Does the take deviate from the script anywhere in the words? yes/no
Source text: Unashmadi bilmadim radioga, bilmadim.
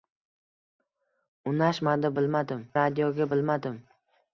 no